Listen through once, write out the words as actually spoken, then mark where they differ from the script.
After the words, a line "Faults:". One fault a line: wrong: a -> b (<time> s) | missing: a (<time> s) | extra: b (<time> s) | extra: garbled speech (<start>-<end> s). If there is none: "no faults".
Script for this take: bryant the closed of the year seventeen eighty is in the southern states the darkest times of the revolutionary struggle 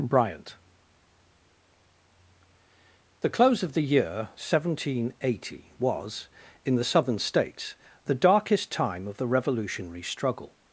bryant the close of the year seventeen eighty was in the southern states the darkest time of the revolutionary struggle
Faults:
wrong: closed -> close (3.3 s)
wrong: is -> was (5.8 s)
wrong: times -> time (8.7 s)